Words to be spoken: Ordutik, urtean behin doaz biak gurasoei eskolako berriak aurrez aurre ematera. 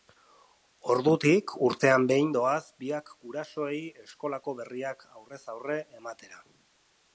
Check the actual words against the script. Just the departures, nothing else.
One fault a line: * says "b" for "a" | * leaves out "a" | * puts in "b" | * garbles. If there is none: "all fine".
all fine